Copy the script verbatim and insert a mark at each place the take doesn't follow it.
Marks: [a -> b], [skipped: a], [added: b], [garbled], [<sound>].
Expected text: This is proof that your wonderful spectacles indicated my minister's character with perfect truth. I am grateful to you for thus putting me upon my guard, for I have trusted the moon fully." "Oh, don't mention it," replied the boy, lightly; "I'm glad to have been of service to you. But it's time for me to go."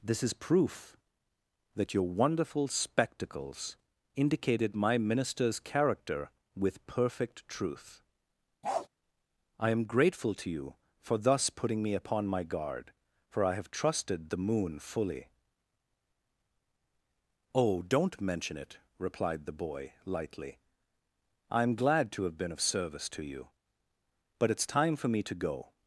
This is proof that your wonderful spectacles indicated my minister's character with perfect truth. [bark] I am grateful to you for thus putting me upon my guard, for I have trusted the moon fully." "Oh, don't mention it," replied the boy, lightly; "I'm glad to have been of service to you. But it's time for me to go."